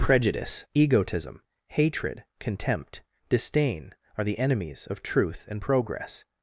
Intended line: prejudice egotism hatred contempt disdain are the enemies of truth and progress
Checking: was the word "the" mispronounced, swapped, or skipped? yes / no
no